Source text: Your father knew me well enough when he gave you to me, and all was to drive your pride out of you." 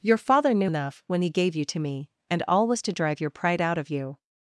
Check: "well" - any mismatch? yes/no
yes